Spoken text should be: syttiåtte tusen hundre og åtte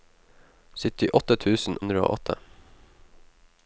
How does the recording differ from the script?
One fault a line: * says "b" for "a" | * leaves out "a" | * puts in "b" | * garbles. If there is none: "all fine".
all fine